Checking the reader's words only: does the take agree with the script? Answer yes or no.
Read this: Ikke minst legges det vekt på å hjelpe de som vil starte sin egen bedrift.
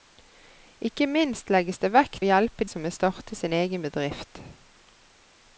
no